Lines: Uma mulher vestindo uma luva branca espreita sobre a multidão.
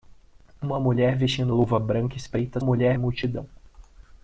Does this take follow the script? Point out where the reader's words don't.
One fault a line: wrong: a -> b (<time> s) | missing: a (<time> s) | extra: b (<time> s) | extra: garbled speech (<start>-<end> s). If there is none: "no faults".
missing: uma (1.5 s)
wrong: sobre -> mulher (2.6 s)